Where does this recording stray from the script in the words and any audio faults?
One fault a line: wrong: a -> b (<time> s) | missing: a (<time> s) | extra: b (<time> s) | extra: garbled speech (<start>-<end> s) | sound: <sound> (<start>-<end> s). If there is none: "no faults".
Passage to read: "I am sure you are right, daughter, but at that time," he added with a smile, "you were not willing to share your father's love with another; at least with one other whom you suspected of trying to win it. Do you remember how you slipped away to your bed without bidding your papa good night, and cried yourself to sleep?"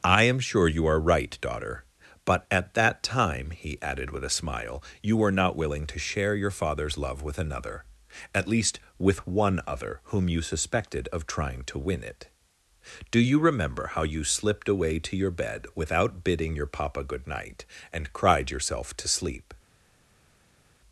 no faults